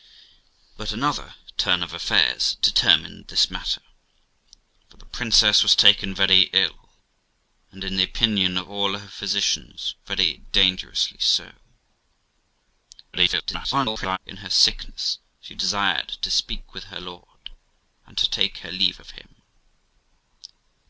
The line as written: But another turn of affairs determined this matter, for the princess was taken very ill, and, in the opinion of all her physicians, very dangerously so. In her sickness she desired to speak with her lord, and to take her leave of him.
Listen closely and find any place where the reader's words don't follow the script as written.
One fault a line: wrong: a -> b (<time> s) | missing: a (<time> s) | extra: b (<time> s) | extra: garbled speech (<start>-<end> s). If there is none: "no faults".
extra: garbled speech (13.1-14.2 s)